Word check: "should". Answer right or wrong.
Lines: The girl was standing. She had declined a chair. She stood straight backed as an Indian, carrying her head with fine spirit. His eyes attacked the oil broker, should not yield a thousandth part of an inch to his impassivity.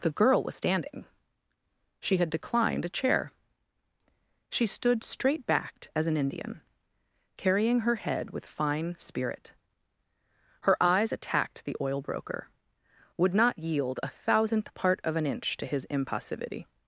wrong